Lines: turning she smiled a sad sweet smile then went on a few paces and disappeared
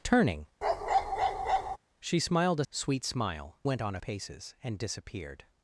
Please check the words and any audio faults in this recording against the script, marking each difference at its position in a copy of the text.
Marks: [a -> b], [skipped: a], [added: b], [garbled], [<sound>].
turning [bark] she smiled a [skipped: sad] sweet smile [skipped: then] went on a [skipped: few] paces and disappeared